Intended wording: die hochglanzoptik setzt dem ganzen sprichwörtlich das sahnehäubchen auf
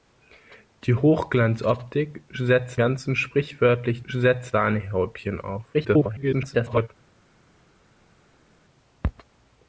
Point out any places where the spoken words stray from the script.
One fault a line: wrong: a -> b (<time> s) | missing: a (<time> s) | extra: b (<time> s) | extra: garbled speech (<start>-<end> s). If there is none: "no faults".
missing: dem (2.8 s)
wrong: das -> setzt (4.1 s)
extra: garbled speech (5.7-6.9 s)